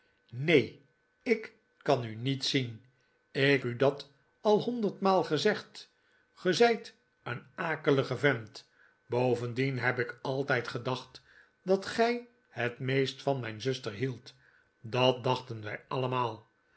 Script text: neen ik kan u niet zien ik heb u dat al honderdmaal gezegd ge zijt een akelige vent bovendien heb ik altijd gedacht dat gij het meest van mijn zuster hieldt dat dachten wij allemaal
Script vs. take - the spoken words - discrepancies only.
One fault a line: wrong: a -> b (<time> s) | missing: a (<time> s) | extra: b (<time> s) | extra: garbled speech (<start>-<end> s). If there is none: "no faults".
missing: heb (3.6 s)